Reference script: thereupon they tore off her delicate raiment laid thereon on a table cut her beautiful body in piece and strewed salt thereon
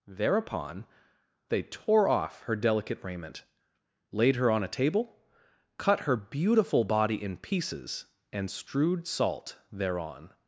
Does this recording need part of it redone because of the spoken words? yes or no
yes